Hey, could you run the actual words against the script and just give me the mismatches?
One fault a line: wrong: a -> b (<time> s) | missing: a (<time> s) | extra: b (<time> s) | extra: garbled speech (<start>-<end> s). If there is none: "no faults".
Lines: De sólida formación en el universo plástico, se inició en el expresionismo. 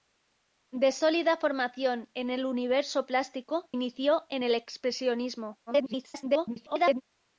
missing: se (3.7 s)
extra: garbled speech (5.7-7.0 s)